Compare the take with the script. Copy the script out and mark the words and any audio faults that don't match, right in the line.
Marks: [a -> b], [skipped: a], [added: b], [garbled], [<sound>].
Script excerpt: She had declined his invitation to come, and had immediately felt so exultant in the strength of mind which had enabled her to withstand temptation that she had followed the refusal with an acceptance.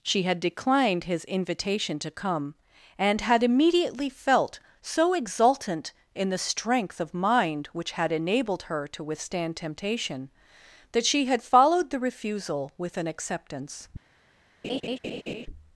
She had declined his invitation to come, and had immediately felt so exultant in the strength of mind which had enabled her to withstand temptation that she had followed the refusal with an acceptance. [laugh]